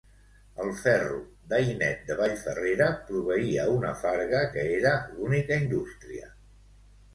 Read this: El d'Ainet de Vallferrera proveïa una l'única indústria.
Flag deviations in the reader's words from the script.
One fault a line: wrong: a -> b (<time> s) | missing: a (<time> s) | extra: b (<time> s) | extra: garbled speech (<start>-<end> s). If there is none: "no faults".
extra: ferro (0.8 s)
extra: farga que era (4.1 s)